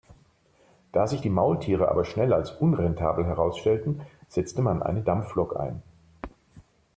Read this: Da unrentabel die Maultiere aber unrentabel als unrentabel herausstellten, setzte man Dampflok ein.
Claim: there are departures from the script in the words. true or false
true